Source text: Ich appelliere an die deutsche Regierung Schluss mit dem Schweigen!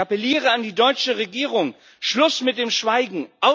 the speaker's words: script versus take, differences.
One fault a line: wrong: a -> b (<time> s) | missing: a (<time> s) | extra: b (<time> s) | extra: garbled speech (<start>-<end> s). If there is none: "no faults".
no faults